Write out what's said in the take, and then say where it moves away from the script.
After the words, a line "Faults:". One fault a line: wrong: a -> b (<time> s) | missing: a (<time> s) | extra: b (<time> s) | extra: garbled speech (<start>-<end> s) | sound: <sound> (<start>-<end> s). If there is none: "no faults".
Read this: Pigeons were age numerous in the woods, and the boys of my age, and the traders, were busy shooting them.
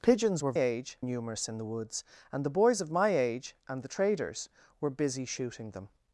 Pigeons were age numerous in the woods, and the boys of my age, and the traders, were busy shooting them.
Faults:
no faults